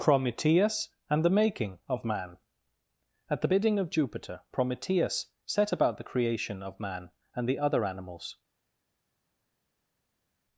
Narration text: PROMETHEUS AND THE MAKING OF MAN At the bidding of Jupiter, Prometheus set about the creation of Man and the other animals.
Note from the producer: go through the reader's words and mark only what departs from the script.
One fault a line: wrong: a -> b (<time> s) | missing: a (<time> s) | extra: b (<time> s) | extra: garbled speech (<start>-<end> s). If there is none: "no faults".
no faults